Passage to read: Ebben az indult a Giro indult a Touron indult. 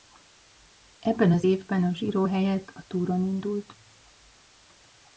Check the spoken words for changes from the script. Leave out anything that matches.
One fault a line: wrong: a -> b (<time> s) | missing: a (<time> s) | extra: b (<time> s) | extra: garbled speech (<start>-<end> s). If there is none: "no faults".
wrong: indult -> évben (1.4 s)
wrong: indult -> helyett (2.2 s)